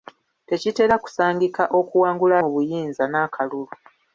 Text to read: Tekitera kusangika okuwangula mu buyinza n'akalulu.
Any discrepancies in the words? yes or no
no